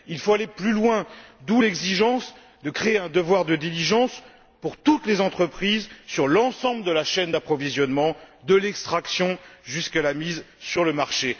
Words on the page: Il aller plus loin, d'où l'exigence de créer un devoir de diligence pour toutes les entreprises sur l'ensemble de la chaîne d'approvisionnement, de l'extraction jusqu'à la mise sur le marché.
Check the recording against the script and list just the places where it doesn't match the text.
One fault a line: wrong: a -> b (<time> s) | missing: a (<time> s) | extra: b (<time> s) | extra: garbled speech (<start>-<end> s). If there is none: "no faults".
extra: faut (0.2 s)